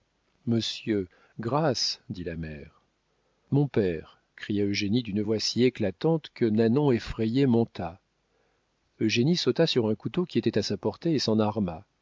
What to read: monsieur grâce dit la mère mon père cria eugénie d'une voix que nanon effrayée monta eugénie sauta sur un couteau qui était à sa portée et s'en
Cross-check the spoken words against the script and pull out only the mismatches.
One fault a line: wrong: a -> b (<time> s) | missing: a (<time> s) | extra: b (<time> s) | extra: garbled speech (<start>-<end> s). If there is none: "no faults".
extra: si éclatante (5.4 s)